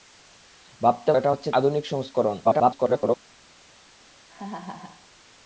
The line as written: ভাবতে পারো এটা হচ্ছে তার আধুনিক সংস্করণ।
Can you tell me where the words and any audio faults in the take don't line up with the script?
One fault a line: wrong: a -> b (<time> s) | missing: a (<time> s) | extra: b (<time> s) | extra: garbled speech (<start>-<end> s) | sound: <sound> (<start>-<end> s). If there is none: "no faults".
missing: পারো (1.1 s)
missing: তার (1.5 s)
extra: garbled speech (2.4-3.2 s)
sound: laugh (4.3-5.1 s)